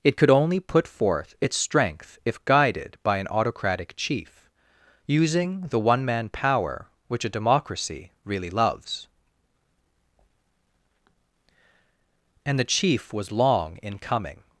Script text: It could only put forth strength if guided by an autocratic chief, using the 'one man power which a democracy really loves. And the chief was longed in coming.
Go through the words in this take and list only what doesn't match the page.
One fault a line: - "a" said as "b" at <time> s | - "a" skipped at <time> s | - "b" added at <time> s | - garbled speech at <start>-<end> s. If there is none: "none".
- "its" added at 1.4 s
- "longed" said as "long" at 13.3 s